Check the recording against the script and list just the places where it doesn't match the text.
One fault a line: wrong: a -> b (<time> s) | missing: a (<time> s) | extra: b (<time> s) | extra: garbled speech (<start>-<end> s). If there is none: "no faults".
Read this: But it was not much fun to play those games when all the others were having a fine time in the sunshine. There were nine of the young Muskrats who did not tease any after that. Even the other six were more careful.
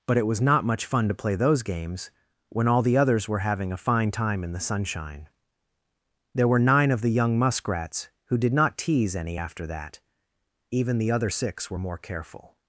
no faults